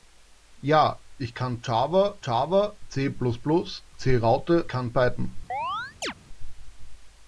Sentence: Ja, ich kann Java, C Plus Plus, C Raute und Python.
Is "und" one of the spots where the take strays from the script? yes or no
yes